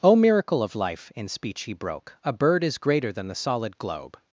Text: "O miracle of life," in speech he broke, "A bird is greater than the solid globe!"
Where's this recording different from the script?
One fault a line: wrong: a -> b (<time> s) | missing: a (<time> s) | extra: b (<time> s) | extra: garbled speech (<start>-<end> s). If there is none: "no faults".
no faults